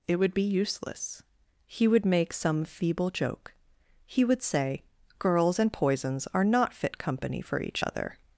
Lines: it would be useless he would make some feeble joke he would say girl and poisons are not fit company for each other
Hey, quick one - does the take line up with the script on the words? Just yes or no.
no